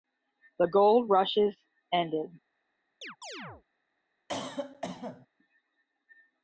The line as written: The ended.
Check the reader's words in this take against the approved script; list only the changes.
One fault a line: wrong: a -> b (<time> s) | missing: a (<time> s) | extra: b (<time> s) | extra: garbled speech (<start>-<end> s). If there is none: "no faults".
extra: gold rushes (0.7 s)